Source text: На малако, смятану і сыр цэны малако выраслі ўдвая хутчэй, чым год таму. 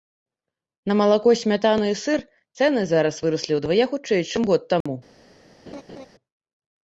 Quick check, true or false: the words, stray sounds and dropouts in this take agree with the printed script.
false